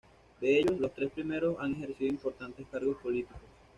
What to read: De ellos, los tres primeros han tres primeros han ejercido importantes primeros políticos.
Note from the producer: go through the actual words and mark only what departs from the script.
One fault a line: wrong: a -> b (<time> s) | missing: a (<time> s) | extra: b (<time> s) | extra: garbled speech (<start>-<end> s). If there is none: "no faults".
missing: tres primeros han (1.7 s)
wrong: primeros -> cargos (2.7 s)